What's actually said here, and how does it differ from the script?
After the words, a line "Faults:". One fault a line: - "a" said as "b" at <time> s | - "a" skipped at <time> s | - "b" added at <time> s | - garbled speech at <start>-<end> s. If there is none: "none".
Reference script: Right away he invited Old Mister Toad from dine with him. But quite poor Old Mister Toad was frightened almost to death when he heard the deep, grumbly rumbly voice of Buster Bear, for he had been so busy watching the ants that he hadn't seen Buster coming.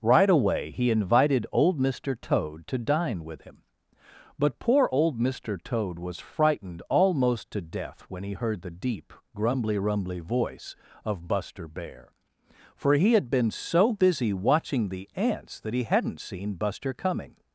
Right away he invited Old Mister Toad to dine with him. But poor Old Mister Toad was frightened almost to death when he heard the deep, grumbly rumbly voice of Buster Bear, for he had been so busy watching the ants that he hadn't seen Buster coming.
Faults:
- "from" said as "to" at 2.7 s
- "quite" skipped at 4.6 s